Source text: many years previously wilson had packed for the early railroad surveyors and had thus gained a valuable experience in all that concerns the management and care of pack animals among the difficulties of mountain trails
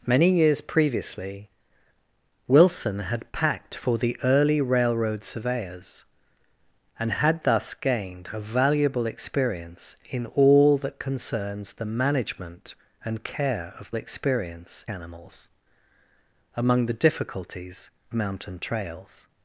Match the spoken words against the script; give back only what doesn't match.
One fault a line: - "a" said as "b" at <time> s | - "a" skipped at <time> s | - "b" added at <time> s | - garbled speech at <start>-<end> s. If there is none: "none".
- "pack" said as "experience" at 13.9 s
- "of" skipped at 17.9 s